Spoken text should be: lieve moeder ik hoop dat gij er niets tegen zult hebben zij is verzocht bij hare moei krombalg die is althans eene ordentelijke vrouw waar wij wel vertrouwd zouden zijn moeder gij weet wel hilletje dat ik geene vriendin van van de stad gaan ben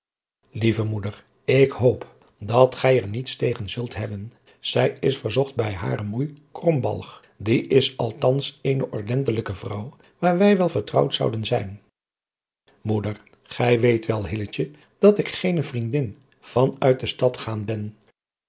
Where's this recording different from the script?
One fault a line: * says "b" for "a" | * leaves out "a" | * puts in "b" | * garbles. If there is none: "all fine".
* says "uit" for "van"